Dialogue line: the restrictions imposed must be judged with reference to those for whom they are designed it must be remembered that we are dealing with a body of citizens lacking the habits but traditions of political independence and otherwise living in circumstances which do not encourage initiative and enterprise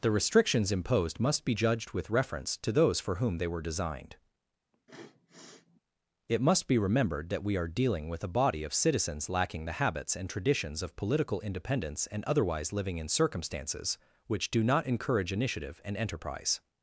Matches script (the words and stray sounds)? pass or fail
fail